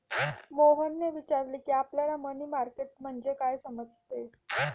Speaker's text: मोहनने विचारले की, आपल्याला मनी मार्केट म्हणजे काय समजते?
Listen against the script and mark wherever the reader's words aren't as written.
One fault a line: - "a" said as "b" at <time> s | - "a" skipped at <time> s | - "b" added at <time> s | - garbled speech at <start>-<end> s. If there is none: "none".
none